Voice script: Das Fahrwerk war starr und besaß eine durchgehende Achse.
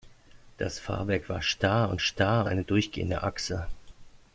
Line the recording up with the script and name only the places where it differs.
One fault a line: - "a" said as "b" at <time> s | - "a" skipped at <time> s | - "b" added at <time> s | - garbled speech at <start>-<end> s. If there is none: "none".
- "besaß" said as "starr" at 2.0 s